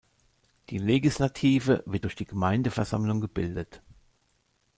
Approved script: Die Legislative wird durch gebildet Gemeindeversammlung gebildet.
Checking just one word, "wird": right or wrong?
right